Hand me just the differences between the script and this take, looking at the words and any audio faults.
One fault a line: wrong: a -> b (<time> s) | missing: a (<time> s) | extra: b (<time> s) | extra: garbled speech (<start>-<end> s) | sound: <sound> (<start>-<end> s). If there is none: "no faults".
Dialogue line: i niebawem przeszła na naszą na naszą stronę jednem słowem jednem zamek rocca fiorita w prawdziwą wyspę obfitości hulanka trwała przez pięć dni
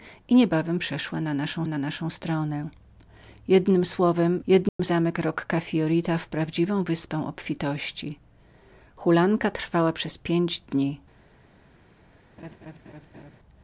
sound: dropout (4.7-4.8 s)
sound: laugh (12.4-13.4 s)